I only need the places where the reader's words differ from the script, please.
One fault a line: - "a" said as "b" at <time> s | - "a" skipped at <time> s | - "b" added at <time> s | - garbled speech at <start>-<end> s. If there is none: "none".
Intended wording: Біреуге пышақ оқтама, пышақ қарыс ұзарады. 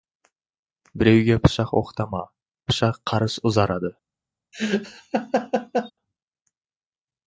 none